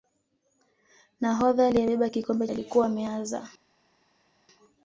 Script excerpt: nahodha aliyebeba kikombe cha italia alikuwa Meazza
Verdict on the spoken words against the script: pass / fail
fail